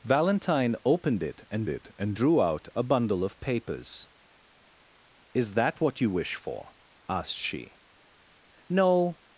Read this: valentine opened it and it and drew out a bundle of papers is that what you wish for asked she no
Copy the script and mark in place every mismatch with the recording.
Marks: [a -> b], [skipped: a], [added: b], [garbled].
valentine opened it and it and drew out a bundle of papers is that what you wish for asked she no